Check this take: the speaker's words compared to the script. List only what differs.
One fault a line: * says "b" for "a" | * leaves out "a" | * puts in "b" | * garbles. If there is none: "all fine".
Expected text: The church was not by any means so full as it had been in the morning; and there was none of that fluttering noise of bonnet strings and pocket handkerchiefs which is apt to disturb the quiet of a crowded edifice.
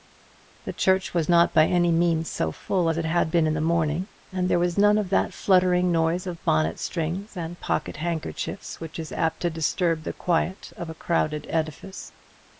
all fine